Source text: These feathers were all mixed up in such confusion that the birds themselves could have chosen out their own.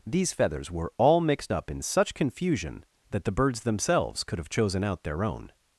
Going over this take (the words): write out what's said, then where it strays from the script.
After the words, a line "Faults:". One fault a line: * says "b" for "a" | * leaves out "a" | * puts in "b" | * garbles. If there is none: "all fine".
These feathers were all mixed up in such confusion that the birds themselves could have chosen out their own.
Faults:
all fine